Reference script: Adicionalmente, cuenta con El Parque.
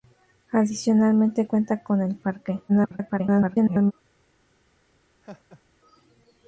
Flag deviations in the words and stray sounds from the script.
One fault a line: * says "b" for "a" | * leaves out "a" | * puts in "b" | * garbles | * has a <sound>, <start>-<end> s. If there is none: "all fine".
* garbles
* has a laugh, 5.2-5.6 s